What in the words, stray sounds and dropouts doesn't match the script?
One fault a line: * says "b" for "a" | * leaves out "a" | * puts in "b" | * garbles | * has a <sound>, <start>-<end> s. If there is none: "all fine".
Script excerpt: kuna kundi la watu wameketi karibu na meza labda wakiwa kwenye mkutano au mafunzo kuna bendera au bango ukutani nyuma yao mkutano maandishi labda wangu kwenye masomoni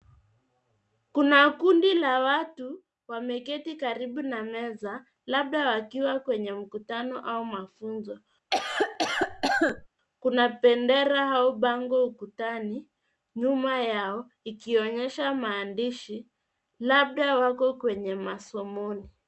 * has a cough, 8.5-9.9 s
* says "ikionyesha" for "mkutano"
* says "wako" for "wangu"